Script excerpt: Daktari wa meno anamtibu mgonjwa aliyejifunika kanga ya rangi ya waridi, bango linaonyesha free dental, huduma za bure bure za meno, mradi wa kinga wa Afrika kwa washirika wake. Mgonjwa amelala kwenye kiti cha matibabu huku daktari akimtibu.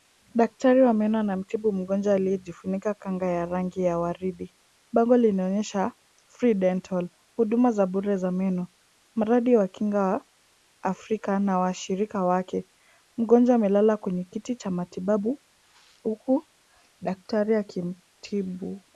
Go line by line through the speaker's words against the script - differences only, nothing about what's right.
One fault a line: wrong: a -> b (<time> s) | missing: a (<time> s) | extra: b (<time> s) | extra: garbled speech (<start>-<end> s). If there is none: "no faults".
missing: bure (8.2 s)
wrong: kwa -> na (11.4 s)